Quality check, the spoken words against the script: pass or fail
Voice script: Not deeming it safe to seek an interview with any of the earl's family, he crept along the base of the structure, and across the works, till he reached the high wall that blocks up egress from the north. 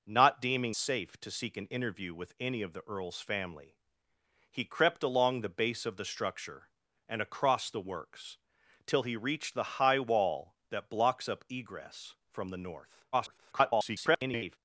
fail